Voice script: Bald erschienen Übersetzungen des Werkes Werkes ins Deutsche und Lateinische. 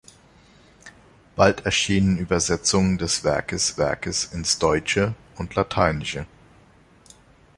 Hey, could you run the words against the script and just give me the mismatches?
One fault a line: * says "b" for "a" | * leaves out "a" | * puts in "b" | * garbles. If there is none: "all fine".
all fine